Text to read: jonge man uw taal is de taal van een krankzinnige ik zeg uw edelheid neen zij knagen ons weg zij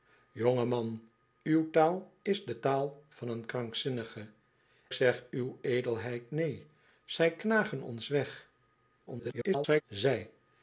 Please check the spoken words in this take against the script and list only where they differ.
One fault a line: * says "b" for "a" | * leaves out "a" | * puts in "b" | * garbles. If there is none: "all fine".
* leaves out "ik"
* garbles